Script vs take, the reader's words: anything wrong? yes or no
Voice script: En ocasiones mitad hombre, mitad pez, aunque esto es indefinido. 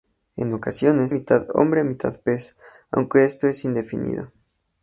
no